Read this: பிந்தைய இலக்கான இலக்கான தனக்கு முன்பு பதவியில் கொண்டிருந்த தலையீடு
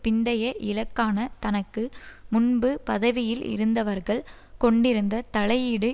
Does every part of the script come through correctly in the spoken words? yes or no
no